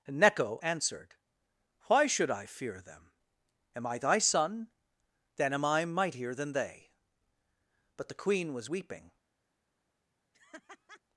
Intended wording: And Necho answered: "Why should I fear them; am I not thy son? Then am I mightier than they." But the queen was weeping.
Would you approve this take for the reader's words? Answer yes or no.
no